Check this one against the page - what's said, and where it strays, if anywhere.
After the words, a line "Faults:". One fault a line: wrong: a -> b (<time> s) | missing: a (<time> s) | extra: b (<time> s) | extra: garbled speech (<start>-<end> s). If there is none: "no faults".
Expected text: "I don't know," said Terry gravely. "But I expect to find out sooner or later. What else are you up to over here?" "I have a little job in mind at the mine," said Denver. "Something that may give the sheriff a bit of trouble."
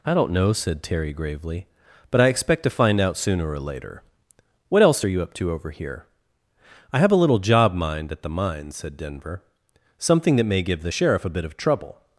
"I don't know," said Terry gravely. "But I expect to find out sooner or later. What else are you up to over here?" "I have a little job mind at the mine," said Denver. "Something that may give the sheriff a bit of trouble."
Faults:
missing: in (7.7 s)